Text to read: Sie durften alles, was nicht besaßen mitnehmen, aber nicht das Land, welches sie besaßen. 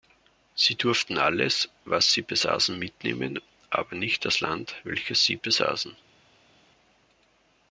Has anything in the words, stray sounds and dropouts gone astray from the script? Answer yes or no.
yes